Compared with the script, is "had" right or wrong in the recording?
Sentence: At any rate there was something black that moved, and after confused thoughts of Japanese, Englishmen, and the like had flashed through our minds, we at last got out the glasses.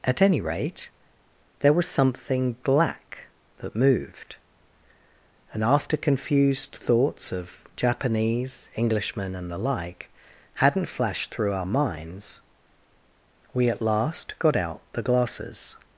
wrong